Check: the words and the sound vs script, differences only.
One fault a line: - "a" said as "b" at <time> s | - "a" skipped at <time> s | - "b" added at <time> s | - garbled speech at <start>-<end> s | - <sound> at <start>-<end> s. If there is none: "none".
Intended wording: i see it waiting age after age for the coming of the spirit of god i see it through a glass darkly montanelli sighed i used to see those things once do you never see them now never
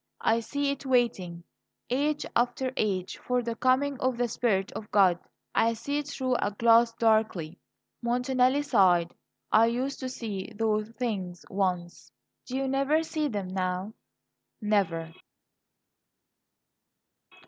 none